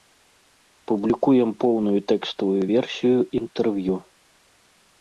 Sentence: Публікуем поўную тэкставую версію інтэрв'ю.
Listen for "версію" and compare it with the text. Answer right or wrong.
right